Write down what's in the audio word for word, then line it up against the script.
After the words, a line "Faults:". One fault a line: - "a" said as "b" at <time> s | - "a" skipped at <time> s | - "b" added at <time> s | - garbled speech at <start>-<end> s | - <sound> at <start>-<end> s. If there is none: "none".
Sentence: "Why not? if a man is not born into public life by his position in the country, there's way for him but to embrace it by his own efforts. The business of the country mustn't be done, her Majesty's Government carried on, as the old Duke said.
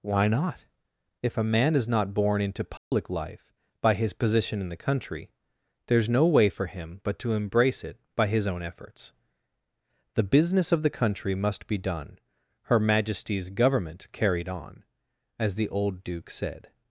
"Why not? if a man is not born into public life by his position in the country, there's no way for him but to embrace it by his own efforts. The business of the country must be done, her Majesty's Government carried on, as the old Duke said.
Faults:
- dropout at 2.8-2.9 s
- "no" added at 6.1 s
- "mustn't" said as "must" at 11.3 s